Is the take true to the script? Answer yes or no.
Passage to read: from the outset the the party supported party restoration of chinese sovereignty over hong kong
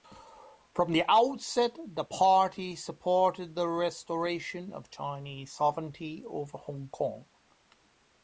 no